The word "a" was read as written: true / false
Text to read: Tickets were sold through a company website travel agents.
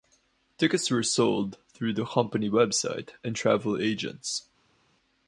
false